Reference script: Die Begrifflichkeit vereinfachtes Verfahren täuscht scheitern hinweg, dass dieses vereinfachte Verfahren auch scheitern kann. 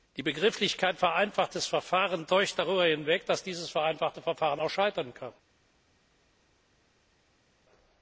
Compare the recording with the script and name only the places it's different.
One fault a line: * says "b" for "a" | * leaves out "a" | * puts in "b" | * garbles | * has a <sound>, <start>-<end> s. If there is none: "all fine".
* says "darüber" for "scheitern"